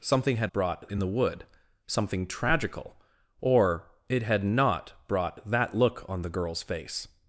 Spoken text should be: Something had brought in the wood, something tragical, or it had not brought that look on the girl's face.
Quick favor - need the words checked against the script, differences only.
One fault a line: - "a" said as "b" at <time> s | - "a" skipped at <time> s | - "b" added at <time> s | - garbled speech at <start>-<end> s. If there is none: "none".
none